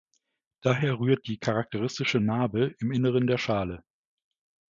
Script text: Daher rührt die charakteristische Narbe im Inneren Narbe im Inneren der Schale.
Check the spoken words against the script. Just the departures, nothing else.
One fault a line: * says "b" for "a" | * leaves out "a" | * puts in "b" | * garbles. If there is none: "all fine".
* leaves out "Narbe im Inneren"